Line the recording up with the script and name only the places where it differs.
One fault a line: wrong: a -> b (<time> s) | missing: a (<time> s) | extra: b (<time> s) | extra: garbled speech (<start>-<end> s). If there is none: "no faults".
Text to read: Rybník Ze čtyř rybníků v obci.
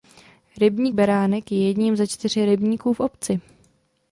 extra: Beránek je jedním (0.9 s)